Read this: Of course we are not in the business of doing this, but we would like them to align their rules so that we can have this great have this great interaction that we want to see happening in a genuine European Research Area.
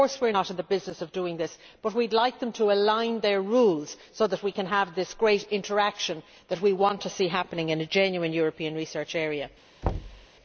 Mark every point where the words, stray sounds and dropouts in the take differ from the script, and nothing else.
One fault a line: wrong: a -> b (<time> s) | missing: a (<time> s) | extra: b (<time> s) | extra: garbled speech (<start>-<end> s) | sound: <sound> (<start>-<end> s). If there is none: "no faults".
missing: have this great (5.5 s)
sound: thud (9.8-10.3 s)